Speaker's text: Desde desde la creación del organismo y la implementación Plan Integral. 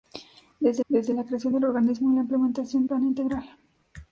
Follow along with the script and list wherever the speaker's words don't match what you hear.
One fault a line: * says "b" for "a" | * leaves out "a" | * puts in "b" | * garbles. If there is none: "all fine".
all fine